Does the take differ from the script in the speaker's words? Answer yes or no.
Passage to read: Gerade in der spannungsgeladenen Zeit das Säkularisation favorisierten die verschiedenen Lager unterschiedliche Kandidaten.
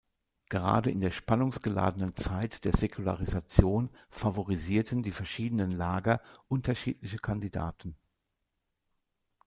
yes